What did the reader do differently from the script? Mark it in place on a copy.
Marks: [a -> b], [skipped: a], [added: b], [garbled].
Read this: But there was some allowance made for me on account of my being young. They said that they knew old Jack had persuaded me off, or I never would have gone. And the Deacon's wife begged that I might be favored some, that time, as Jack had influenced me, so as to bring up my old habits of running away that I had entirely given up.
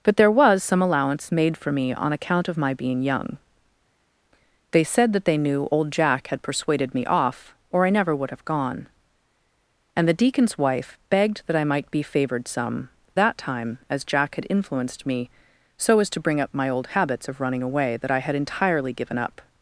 But there was some allowance made for me on account of my being young. They said that they knew old Jack had persuaded me off, or I never would have gone. And the Deacon's wife begged that I might be favored some, that time, as Jack had influenced me, so as to bring up my old habits of running away that I had entirely given up.